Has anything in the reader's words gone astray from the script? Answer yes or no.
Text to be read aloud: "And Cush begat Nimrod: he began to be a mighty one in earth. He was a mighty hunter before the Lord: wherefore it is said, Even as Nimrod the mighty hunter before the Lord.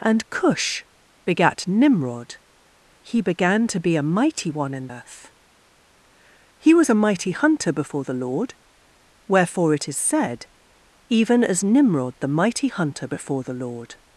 no